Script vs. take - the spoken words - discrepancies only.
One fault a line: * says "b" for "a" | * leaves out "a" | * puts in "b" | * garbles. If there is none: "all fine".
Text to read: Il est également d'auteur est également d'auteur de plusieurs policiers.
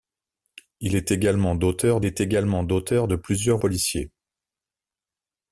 all fine